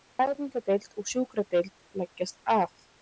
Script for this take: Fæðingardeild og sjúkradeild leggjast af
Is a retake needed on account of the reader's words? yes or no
no